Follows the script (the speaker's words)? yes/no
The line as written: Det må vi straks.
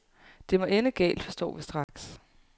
no